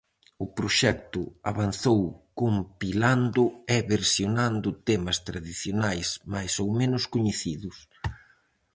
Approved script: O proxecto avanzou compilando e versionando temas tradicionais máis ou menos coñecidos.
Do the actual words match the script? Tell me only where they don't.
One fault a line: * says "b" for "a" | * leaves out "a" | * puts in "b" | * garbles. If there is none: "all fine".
all fine